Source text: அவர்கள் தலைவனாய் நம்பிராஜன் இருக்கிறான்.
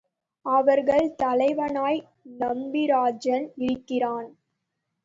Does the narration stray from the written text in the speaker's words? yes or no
no